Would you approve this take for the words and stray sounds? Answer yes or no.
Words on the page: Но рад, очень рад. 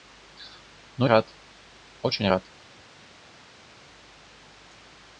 yes